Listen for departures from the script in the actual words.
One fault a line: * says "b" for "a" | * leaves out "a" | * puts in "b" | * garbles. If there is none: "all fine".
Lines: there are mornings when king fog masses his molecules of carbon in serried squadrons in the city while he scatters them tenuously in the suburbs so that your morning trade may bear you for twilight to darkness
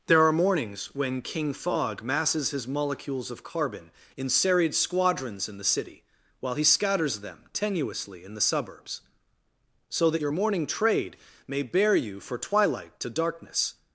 all fine